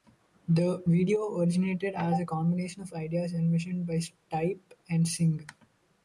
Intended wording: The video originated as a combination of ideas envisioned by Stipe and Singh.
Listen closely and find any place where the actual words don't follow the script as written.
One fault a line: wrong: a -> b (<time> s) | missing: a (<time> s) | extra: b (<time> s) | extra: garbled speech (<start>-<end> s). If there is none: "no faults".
no faults